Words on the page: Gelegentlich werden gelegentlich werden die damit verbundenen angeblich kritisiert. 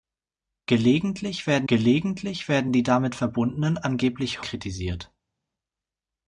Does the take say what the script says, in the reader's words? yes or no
yes